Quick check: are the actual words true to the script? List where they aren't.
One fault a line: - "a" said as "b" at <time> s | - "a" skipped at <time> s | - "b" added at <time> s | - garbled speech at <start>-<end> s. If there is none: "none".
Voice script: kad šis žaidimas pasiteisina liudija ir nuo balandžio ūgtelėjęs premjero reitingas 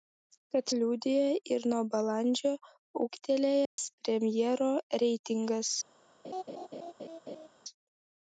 - "šis žaidimas pasiteisina" skipped at 0.7 s